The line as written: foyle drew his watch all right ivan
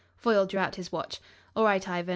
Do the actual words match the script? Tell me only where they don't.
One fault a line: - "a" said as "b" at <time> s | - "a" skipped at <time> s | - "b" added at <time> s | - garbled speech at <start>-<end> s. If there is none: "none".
- "out" added at 0.6 s